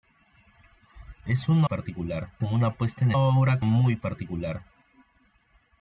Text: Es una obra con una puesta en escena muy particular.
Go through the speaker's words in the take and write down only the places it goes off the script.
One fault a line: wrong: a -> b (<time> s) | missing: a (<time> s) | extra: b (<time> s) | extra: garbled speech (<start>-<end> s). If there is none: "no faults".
wrong: obra -> particular (1.6 s)
wrong: escena -> obra (3.2 s)